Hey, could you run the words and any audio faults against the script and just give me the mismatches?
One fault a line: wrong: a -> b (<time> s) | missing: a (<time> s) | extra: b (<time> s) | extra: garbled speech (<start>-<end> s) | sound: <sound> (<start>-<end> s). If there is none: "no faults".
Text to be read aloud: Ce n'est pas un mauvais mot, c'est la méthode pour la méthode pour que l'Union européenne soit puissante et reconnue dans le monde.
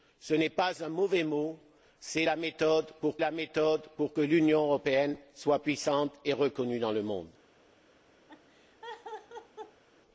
sound: laugh (8.3-9.8 s)